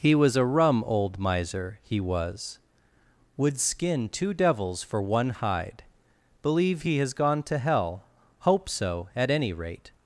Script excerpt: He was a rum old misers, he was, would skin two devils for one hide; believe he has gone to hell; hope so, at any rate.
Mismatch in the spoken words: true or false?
true